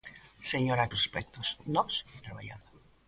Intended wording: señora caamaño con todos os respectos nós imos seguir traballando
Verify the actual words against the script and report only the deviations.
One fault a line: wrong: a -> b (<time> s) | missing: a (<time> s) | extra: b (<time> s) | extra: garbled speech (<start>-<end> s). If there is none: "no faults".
missing: caamaño con todos (0.9 s)
missing: imos seguir (1.9 s)